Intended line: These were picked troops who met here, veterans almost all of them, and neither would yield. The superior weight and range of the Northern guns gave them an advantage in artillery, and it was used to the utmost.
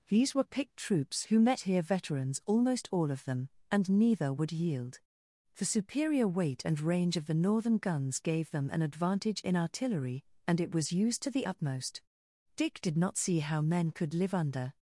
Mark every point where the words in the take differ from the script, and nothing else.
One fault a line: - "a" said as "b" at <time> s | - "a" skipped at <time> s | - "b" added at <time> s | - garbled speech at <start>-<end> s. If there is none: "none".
- "Dick did not see how men could live under" added at 12.6 s